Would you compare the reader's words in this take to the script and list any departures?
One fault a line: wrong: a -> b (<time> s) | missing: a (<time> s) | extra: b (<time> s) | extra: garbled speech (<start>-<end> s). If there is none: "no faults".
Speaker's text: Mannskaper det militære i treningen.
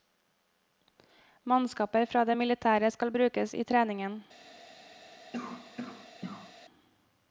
extra: fra (2.1 s)
extra: skal brukes (3.0 s)